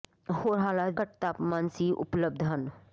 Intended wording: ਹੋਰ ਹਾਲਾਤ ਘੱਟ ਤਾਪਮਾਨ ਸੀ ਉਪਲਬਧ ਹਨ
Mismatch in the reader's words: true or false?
false